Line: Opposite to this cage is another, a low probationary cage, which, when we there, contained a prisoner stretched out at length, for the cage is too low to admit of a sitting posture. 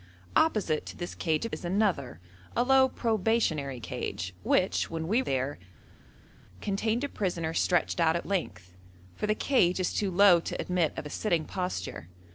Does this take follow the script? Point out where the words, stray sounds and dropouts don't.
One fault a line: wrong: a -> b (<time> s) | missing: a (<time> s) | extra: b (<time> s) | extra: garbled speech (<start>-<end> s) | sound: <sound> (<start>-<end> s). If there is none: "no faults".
no faults